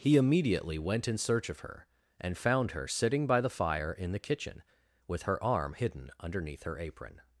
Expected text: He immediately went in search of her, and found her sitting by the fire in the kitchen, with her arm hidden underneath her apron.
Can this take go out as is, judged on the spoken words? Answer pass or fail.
pass